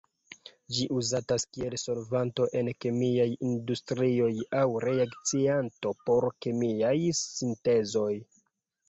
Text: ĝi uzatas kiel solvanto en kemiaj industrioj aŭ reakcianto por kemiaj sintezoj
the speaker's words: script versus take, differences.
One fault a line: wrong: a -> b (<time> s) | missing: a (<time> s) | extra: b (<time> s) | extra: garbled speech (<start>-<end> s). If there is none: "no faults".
no faults